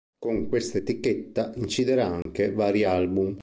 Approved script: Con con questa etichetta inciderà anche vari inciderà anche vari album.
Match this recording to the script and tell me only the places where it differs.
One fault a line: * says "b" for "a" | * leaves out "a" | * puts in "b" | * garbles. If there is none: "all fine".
* leaves out "con"
* leaves out "inciderà anche vari"